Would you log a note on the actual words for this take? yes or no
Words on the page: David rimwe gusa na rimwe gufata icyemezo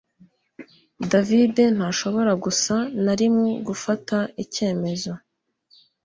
yes